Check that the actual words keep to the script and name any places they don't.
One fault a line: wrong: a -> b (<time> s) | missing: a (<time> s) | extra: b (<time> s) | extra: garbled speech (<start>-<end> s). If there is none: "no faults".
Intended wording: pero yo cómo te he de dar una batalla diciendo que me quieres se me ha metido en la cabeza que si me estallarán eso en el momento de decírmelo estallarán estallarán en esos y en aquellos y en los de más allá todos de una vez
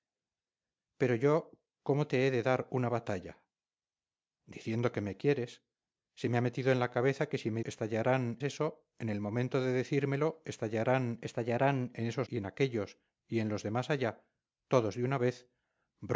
no faults